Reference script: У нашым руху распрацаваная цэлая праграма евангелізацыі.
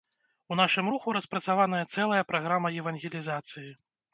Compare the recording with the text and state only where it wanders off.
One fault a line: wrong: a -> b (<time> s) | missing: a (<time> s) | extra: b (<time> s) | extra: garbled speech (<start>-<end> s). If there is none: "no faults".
no faults